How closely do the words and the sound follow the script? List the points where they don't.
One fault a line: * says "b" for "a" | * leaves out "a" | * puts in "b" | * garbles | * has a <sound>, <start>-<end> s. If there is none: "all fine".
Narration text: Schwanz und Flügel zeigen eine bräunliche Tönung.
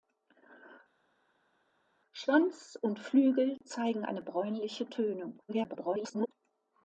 * garbles